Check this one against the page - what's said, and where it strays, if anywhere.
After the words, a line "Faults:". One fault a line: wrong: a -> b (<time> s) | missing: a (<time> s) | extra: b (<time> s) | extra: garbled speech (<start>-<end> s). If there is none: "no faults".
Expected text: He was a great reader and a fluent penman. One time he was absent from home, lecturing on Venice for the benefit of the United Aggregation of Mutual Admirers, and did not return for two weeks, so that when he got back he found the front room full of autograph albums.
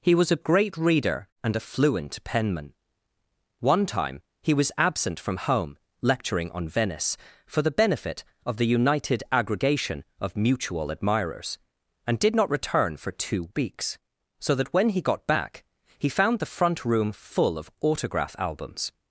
He was a great reader and a fluent penman. One time he was absent from home, lecturing on Venice for the benefit of the United Aggregation of Mutual Admirers, and did not return for two weeks, so that when he got back he found the front room full of autograph albums.
Faults:
no faults